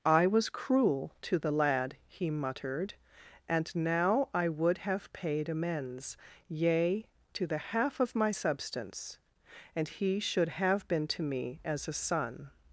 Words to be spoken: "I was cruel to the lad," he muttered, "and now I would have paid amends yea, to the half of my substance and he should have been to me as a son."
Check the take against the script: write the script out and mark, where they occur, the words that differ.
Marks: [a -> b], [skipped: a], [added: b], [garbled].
"I was cruel to the lad," he muttered, "and now I would have paid amends yea, to the half of my substance and he should have been to me as a son."